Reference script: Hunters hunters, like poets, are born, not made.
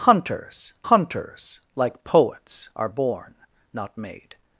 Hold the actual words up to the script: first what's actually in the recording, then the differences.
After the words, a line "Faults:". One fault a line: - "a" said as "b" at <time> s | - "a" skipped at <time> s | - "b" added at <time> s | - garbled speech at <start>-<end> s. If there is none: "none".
Hunters hunters, like poets, are born, not made.
Faults:
none